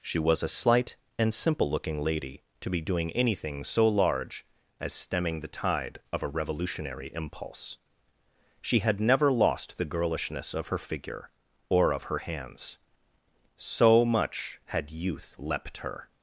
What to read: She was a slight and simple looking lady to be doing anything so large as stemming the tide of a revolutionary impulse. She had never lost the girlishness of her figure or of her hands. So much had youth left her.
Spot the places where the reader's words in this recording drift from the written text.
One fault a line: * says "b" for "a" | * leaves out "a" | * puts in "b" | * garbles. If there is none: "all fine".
* says "leapt" for "left"